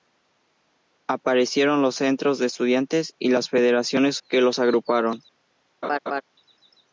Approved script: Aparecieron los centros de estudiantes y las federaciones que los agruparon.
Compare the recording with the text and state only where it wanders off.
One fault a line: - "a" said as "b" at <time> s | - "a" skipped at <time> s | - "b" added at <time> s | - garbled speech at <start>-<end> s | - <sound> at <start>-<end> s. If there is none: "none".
- laugh at 5.8-6.2 s